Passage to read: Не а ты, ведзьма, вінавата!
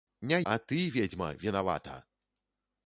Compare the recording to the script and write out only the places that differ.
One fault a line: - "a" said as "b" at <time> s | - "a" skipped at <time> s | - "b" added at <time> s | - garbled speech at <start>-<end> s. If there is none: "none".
none